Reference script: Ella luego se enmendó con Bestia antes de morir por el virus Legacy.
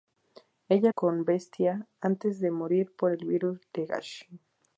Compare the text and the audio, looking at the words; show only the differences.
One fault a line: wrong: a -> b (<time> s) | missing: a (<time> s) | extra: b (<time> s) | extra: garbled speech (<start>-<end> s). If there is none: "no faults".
missing: luego se enmendó (0.9 s)